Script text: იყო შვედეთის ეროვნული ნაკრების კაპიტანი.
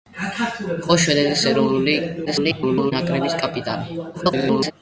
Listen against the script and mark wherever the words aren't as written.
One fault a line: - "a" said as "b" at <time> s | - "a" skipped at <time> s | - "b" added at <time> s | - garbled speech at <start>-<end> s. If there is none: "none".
- garbled speech at 2.3-2.9 s
- garbled speech at 4.1-4.7 s